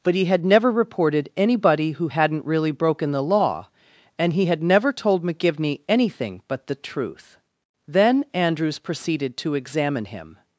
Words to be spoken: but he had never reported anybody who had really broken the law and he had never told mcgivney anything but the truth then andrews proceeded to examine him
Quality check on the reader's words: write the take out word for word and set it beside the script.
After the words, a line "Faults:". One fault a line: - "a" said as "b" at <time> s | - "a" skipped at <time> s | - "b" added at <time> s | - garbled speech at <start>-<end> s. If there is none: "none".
but he had never reported anybody who hadn't really broken the law and he had never told mcgivney anything but the truth then andrews proceeded to examine him
Faults:
- "had" said as "hadn't" at 2.1 s